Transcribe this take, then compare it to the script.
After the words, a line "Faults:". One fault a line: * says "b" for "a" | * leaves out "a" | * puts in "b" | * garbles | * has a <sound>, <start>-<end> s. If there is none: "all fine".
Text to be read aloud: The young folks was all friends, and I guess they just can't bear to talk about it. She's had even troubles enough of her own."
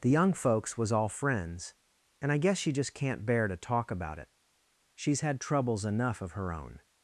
The young folks was all friends, and I guess she just can't bear to talk about it. She's had troubles enough of her own."
Faults:
* says "she" for "they"
* leaves out "even"